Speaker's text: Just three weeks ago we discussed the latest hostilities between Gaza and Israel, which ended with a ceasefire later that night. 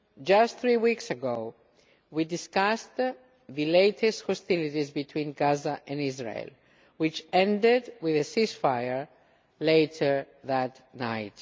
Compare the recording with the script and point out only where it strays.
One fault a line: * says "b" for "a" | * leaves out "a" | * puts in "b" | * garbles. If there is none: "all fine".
all fine